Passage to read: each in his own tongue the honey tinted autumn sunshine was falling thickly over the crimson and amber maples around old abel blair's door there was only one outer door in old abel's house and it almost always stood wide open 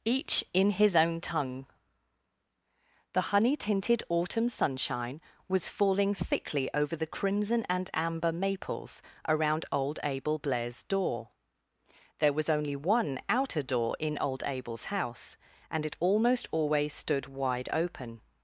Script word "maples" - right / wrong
right